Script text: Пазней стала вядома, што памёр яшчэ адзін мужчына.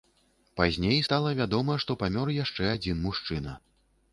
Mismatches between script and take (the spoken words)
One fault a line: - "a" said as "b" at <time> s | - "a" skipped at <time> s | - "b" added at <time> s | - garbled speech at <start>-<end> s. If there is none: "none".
none